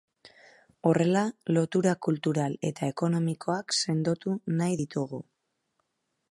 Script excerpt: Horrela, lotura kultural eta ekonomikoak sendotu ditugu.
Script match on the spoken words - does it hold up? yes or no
no